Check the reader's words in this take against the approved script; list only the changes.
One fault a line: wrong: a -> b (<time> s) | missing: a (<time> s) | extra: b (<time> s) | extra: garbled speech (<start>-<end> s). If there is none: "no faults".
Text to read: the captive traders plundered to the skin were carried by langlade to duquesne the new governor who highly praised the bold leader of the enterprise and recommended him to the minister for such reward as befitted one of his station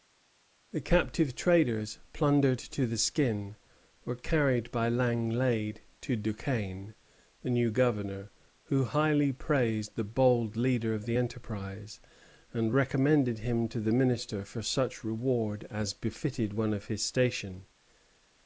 no faults